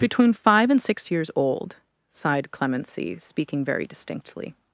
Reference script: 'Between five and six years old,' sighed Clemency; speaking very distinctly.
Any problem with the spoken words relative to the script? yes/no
no